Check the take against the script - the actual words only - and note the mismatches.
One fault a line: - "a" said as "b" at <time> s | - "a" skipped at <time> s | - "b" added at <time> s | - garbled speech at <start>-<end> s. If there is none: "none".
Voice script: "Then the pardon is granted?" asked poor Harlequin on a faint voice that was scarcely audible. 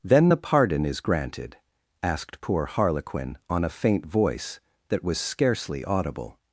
none